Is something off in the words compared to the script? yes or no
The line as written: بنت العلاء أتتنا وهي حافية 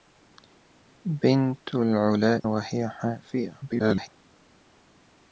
yes